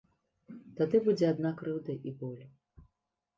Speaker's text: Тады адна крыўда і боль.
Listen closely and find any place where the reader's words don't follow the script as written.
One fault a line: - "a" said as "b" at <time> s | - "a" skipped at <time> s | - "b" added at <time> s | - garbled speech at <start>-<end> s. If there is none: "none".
- "будзе" added at 1.1 s